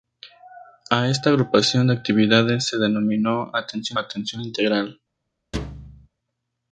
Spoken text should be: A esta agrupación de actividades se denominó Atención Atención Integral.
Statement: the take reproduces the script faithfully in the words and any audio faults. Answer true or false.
false